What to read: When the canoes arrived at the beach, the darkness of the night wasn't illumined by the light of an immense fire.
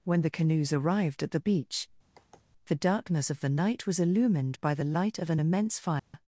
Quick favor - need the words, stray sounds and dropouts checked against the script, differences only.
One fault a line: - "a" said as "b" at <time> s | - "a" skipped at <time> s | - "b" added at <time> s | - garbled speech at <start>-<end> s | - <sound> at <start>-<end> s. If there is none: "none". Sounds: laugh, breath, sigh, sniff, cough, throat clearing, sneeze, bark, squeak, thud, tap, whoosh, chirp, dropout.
- sigh at 2.2-2.5 s
- "wasn't" said as "was" at 3.9 s
- dropout at 6.0-6.1 s